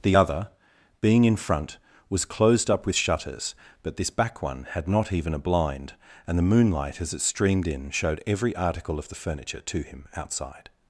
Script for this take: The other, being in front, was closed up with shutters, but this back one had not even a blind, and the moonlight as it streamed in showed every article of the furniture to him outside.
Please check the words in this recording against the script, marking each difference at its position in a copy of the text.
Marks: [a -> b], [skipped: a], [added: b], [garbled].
The other, being in front, was closed up with shutters, but this back one had not even a blind, and the moonlight as it streamed in showed every article of the furniture to him outside.